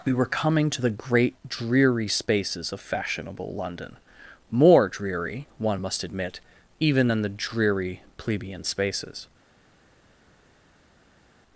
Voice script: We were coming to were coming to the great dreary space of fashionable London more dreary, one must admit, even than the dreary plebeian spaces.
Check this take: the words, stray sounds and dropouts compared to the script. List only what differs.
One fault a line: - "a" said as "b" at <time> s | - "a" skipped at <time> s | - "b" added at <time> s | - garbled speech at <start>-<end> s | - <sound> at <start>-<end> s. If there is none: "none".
- "were coming to" skipped at 0.8 s
- "space" said as "spaces" at 2.1 s